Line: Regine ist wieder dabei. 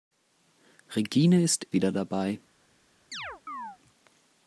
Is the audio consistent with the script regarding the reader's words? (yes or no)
yes